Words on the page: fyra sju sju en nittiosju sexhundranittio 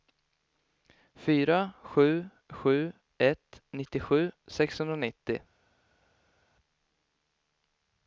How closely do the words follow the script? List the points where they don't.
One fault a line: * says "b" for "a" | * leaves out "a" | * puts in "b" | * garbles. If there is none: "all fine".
* says "ett" for "en"